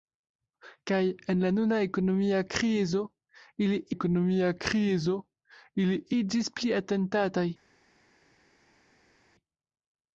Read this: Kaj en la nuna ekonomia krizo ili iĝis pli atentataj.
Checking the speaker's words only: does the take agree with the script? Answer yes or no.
no